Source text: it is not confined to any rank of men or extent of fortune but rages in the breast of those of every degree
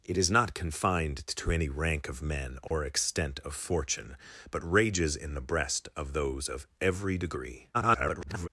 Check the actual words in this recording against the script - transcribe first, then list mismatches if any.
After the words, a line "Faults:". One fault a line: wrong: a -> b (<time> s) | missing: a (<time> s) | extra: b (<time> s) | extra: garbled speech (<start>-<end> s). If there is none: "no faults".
it is not confined to any rank of men or extent of fortune but rages in the breast of those of every degree [garbled]
Faults:
extra: garbled speech (7.7-8.5 s)